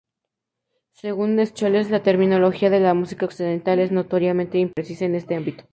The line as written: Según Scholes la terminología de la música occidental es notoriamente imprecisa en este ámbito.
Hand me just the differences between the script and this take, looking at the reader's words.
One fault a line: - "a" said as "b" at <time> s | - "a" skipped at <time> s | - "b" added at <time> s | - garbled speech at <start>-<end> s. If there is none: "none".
none